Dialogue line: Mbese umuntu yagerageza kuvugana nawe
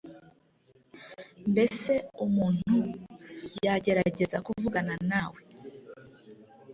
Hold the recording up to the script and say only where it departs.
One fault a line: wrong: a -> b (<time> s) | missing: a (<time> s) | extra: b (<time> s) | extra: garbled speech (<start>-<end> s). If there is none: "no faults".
no faults